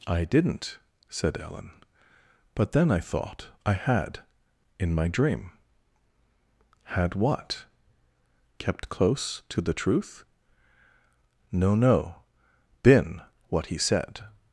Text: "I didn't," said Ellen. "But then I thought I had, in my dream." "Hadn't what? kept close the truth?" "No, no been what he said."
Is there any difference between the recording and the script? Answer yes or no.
yes